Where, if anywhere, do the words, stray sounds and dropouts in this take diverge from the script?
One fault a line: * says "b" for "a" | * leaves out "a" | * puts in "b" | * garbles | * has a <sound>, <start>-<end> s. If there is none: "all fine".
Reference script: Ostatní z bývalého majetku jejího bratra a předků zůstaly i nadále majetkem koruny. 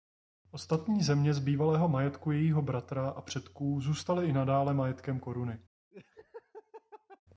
* puts in "země"
* has a laugh, 5.9-7.2 s